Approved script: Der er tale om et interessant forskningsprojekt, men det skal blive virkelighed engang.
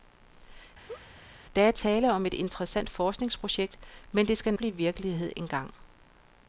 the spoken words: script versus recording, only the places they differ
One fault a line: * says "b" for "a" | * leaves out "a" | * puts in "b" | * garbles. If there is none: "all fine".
all fine